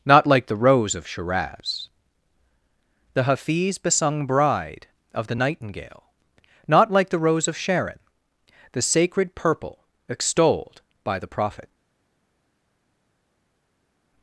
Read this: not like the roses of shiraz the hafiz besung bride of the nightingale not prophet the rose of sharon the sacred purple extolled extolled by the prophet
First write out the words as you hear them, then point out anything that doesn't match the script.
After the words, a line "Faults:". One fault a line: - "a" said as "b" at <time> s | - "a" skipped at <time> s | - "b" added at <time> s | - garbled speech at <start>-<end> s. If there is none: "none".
not like the rose of shiraz the hafiz besung bride of the nightingale not like the rose of sharon the sacred purple extolled by the prophet
Faults:
- "roses" said as "rose" at 0.6 s
- "prophet" said as "like" at 6.9 s
- "extolled" skipped at 10.8 s